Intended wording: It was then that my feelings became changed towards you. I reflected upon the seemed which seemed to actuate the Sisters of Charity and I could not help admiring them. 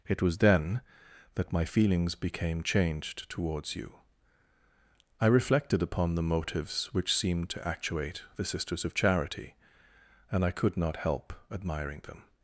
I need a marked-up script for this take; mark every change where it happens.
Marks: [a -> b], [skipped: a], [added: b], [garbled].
It was then that my feelings became changed towards you. I reflected upon the [seemed -> motives] which seemed to actuate the Sisters of Charity and I could not help admiring them.